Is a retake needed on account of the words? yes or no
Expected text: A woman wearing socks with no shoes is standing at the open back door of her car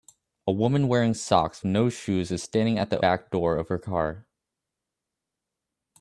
yes